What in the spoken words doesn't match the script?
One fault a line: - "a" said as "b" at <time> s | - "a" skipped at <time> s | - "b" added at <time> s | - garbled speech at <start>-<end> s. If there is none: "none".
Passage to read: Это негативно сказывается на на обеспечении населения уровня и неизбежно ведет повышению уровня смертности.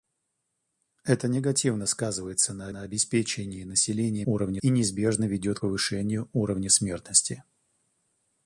none